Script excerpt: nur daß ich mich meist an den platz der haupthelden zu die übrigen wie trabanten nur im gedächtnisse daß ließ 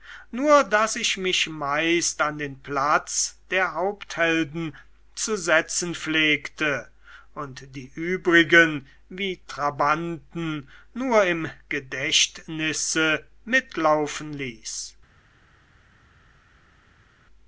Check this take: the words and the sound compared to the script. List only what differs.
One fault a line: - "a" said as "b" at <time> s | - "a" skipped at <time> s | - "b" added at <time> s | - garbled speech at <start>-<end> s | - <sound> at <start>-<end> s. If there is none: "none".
- "setzen pflegte und" added at 5.4 s
- "daß" said as "mitlaufen" at 13.4 s